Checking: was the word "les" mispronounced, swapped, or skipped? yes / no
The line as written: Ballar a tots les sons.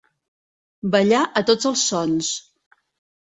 yes